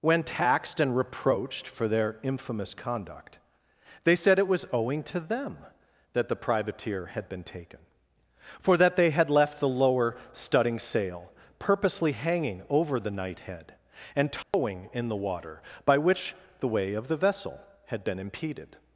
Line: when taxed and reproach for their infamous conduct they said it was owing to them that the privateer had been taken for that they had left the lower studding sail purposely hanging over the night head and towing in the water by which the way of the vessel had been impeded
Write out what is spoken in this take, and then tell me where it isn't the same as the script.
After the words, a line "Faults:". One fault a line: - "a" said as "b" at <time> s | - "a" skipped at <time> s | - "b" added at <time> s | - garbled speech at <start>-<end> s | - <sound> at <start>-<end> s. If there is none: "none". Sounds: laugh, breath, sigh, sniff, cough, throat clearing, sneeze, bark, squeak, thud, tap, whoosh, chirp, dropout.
when taxed and reproached for their infamous conduct they said it was owing to them that the privateer had been taken for that they had left the lower studding sail purposely hanging over the night head and towing in the water by which the way of the vessel had been impeded
Faults:
- "reproach" said as "reproached" at 1.0 s
- dropout at 14.4-14.5 s